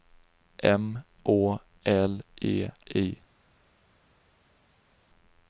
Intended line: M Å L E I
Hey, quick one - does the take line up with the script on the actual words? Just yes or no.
yes